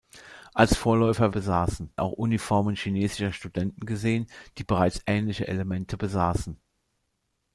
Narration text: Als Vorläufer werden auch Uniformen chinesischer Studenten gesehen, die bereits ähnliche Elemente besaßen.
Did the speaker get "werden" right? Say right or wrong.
wrong